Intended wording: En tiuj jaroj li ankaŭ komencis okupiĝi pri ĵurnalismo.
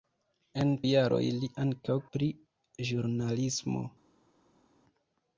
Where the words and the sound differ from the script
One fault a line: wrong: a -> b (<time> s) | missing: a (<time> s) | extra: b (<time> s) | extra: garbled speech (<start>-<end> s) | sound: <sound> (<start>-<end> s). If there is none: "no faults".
missing: tiuj (0.7 s)
missing: komencis okupiĝi (2.0 s)